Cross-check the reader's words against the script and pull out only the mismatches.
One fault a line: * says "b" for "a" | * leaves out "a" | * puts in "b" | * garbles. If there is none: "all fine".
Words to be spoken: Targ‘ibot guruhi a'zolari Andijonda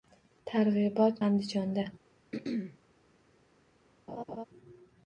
* leaves out "guruhi a'zolari"